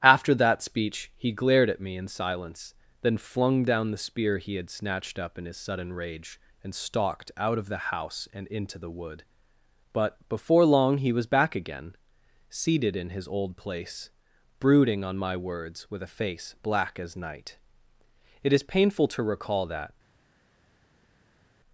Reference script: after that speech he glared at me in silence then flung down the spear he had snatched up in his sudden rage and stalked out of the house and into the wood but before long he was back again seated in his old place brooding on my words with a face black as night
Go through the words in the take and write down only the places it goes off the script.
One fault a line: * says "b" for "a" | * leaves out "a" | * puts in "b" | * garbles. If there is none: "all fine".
* puts in "it is painful to recall that"